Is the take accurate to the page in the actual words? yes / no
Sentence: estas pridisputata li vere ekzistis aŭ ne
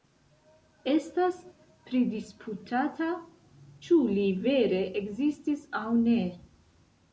no